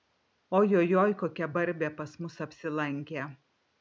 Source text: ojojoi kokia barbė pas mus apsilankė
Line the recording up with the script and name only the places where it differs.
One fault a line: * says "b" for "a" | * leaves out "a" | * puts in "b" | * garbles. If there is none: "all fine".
all fine